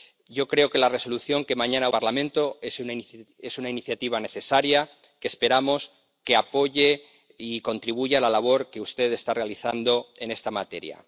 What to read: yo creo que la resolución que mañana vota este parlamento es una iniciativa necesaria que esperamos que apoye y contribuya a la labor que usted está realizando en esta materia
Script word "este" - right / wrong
wrong